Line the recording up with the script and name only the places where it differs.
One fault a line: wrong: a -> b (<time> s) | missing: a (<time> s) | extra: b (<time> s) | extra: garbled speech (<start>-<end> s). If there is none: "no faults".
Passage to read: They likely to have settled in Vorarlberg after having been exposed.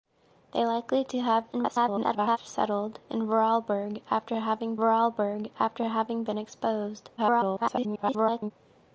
extra: garbled speech (1.5-2.4 s)
extra: Vorarlberg after having (4.8 s)
extra: garbled speech (7.2-8.5 s)